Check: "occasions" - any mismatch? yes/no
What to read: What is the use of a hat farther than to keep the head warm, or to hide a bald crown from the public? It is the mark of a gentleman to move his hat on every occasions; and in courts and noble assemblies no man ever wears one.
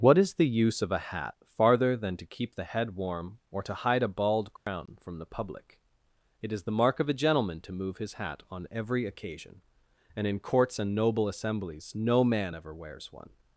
yes